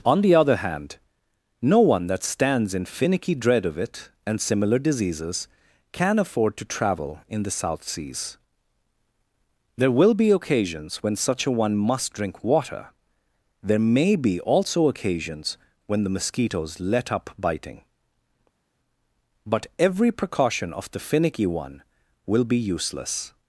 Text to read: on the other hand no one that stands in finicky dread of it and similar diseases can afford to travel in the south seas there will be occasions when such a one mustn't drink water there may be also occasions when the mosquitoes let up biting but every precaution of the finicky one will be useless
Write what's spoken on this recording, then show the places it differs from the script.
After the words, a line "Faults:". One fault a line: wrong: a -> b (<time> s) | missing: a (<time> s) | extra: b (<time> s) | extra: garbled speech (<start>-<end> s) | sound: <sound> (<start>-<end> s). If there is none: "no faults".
on the other hand no one that stands in finicky dread of it and similar diseases can afford to travel in the south seas there will be occasions when such a one must drink water there may be also occasions when the mosquitoes let up biting but every precaution of the finicky one will be useless
Faults:
wrong: mustn't -> must (11.8 s)